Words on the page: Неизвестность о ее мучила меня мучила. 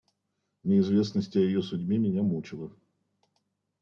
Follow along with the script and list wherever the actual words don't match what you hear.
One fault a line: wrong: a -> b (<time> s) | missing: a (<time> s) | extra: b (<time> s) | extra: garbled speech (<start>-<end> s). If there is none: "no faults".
wrong: мучила -> судьбе (1.6 s)